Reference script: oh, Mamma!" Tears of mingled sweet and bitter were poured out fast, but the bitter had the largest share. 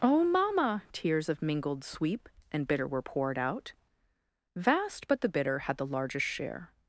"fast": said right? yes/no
no